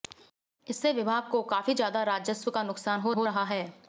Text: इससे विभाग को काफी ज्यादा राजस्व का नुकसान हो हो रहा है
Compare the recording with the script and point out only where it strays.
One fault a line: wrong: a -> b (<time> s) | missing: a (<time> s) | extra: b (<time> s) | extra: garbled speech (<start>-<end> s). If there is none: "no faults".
no faults